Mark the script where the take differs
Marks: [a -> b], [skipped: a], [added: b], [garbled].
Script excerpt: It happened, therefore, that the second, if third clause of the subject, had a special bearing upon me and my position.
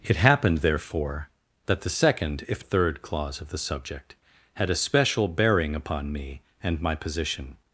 It happened, therefore, that the second, if third clause of the subject, had a special bearing upon me and my position.